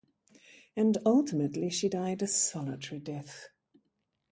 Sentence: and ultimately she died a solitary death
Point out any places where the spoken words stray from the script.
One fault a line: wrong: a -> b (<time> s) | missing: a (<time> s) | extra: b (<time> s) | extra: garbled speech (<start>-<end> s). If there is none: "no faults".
no faults